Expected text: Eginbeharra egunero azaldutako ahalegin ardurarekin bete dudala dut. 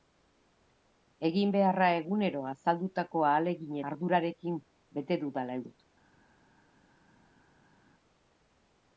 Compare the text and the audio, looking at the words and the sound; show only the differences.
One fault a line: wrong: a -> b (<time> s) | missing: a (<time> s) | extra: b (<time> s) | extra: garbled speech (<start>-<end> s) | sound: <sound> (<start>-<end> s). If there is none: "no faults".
no faults